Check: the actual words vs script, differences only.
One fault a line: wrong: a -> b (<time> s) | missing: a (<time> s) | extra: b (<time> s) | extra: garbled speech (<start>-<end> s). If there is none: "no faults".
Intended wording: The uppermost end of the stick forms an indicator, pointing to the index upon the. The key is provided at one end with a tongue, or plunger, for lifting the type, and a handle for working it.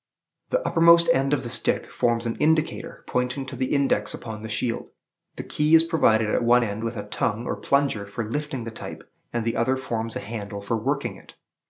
extra: shield (4.5 s)
extra: the other forms (9.4 s)